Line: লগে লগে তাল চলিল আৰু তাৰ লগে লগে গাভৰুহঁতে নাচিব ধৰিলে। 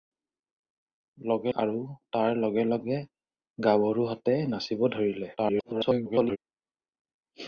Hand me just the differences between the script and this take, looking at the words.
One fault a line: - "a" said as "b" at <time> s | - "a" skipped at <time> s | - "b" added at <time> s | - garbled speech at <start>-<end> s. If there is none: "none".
- "লগে তাল চলিল" skipped at 1.5 s
- garbled speech at 5.4-6.4 s